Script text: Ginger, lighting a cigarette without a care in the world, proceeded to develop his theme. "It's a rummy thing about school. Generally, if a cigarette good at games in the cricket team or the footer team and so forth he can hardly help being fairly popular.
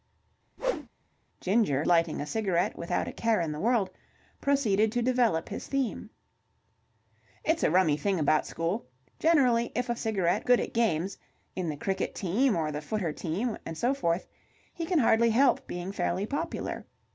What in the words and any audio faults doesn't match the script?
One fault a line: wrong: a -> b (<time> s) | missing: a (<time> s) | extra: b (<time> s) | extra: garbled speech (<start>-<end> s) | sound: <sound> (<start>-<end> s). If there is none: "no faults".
sound: whoosh (0.6-0.9 s)